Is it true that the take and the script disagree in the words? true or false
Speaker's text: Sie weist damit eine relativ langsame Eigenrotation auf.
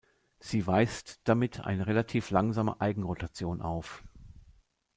false